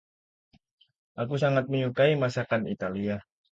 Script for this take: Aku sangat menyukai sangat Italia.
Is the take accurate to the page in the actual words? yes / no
no